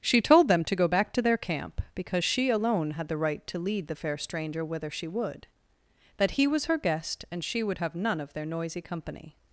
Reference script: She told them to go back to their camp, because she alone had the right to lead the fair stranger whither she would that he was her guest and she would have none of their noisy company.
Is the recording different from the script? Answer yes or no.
no